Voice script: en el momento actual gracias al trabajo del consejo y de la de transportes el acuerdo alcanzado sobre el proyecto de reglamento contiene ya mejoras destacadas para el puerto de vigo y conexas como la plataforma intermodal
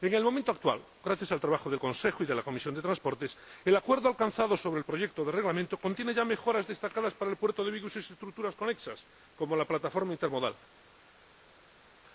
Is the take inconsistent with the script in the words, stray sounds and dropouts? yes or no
yes